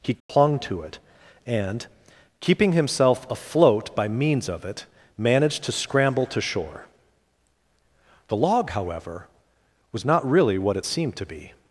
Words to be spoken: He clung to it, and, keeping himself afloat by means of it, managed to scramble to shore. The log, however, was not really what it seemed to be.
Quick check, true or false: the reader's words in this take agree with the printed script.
true